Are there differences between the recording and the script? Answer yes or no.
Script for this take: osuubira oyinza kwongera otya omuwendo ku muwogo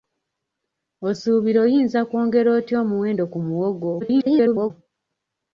yes